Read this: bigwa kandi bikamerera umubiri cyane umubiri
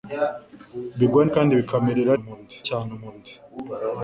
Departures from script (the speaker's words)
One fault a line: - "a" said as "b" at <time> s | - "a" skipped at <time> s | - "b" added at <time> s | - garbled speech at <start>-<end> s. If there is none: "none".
none